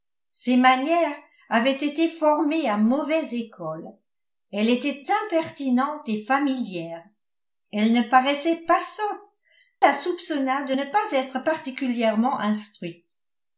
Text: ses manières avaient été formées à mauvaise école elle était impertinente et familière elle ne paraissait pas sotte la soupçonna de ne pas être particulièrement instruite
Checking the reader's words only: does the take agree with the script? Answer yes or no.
yes